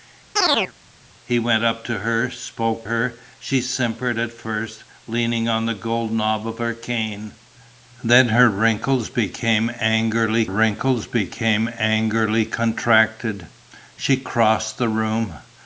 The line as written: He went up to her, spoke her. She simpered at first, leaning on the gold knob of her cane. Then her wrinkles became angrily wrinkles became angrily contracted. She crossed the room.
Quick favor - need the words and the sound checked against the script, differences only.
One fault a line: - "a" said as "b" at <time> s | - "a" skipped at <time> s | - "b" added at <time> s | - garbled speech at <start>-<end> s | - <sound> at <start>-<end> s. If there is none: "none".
- chirp at 0.4-0.7 s